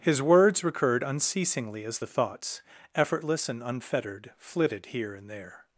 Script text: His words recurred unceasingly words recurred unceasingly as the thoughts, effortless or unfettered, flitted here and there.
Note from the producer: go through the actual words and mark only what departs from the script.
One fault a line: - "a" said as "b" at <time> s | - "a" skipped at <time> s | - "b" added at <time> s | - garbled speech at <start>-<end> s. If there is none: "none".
- "words recurred unceasingly" skipped at 1.8 s
- "or" said as "and" at 3.5 s